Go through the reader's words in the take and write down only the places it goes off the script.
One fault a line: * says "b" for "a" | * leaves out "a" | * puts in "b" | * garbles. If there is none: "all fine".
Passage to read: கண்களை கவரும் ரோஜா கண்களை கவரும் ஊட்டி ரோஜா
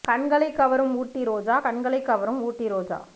* puts in "ஊட்டி"